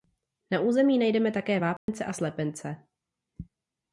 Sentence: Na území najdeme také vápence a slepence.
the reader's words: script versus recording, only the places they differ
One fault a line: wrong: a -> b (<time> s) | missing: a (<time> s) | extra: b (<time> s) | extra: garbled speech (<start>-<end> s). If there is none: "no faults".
no faults